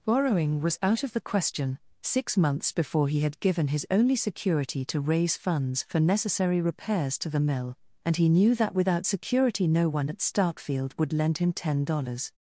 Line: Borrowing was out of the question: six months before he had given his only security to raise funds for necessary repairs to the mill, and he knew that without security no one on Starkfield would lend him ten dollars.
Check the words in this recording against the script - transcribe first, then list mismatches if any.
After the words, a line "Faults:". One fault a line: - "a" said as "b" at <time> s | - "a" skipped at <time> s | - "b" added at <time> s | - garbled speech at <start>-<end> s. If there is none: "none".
Borrowing was out of the question: six months before he had given his only security to raise funds for necessary repairs to the mill, and he knew that without security no one at Starkfield would lend him ten dollars.
Faults:
- "on" said as "at" at 10.1 s